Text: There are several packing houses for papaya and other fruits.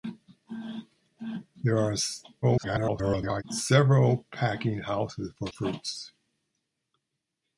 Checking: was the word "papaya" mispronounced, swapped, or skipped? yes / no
yes